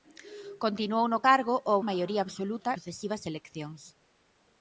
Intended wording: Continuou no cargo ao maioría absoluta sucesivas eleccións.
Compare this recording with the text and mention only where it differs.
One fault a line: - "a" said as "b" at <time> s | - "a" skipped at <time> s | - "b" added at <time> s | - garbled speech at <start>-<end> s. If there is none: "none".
none